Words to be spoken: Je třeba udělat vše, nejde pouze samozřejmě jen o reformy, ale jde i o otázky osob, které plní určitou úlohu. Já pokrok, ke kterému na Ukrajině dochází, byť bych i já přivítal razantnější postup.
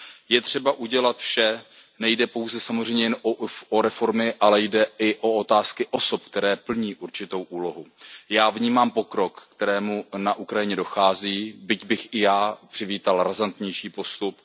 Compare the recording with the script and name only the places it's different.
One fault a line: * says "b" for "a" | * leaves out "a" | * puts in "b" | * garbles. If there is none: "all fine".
* puts in "vnímám"